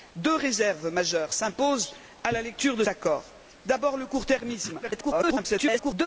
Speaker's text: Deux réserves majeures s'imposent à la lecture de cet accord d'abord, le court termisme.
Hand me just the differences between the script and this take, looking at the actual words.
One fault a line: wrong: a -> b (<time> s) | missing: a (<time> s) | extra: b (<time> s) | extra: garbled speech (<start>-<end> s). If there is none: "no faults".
missing: cet (2.8 s)
extra: garbled speech (4.8-6.1 s)